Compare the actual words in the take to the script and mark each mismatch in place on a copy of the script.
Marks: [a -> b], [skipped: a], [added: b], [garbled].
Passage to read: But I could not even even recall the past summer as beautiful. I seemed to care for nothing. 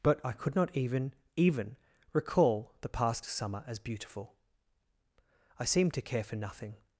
But I could not even even recall the past summer as beautiful. I seemed to care for nothing.